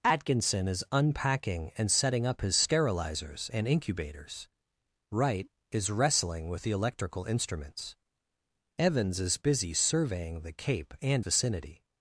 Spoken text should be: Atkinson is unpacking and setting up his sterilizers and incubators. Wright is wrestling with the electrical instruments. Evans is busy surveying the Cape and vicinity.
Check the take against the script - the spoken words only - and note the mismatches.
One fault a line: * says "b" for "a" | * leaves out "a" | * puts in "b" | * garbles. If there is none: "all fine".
all fine